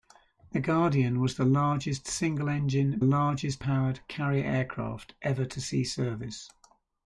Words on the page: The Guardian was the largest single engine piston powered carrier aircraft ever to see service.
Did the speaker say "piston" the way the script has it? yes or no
no